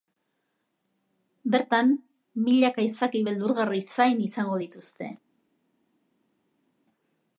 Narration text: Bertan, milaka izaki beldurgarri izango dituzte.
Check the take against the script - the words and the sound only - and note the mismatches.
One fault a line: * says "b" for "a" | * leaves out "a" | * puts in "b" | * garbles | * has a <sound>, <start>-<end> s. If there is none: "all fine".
* puts in "zain"